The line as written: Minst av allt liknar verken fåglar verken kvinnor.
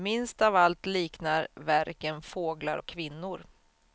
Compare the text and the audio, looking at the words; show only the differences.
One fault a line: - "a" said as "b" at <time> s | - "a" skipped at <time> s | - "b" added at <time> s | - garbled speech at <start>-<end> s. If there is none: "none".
- "verken" said as "och" at 2.7 s